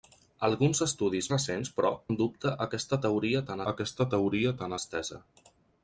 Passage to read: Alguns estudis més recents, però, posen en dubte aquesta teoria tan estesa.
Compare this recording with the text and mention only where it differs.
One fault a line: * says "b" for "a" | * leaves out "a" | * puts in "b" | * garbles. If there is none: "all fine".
* leaves out "més"
* leaves out "posen"
* puts in "aquesta teoria tan"